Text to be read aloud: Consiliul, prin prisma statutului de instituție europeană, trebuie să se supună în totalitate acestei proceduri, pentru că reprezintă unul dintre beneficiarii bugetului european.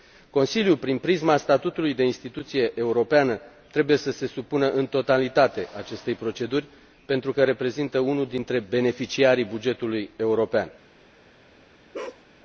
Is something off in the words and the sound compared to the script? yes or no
yes